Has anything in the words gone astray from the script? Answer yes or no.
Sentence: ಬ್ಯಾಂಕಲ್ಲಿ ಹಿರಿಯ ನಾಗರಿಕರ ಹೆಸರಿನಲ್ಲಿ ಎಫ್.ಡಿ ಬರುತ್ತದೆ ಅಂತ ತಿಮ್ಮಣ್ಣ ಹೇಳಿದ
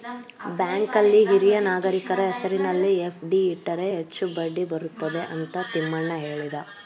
yes